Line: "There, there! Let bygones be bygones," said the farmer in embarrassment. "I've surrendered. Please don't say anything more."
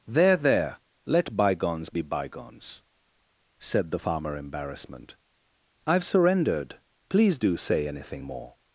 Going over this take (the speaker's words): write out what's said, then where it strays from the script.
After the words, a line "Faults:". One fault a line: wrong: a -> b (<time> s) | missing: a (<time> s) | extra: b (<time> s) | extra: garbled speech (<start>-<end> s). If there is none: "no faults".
"There, there! Let bygones be bygones," said the farmer embarrassment. "I've surrendered. Please do say anything more."
Faults:
missing: in (4.4 s)
wrong: don't -> do (7.4 s)